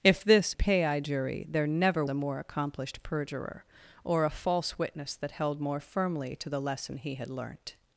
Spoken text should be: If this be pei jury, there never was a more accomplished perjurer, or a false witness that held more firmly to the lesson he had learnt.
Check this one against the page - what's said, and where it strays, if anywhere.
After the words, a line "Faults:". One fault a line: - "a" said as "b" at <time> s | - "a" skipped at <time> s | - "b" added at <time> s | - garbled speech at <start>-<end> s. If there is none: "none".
If this pei jury, there never a more accomplished perjurer, or a false witness that held more firmly to the lesson he had learnt.
Faults:
- "be" skipped at 0.5 s
- "was" skipped at 2.0 s